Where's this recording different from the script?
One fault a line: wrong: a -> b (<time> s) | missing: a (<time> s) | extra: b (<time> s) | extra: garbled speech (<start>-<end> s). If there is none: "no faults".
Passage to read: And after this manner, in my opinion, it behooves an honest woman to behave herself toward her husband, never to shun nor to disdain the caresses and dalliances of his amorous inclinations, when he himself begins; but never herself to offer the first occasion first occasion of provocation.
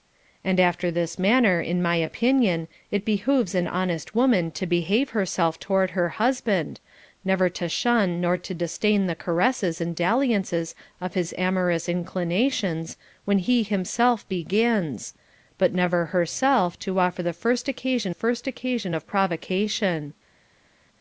no faults